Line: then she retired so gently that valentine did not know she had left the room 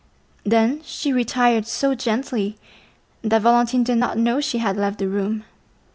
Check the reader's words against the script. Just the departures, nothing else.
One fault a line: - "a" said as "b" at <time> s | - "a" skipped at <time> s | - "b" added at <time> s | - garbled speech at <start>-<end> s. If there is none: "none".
none